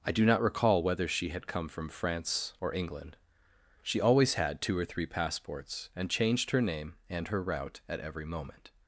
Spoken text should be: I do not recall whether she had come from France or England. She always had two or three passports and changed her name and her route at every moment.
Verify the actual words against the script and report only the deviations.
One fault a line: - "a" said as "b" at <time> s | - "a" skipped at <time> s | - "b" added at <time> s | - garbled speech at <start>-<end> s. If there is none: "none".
none